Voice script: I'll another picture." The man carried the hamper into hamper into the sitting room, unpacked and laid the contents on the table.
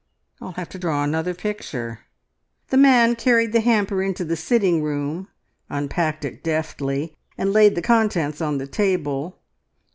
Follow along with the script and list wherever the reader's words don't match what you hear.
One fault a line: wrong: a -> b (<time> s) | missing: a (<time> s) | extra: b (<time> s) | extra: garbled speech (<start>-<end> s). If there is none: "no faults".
extra: have to draw (0.5 s)
missing: hamper into (4.2 s)
extra: it deftly (6.2 s)